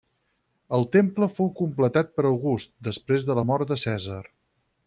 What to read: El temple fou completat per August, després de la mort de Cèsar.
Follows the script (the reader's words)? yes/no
yes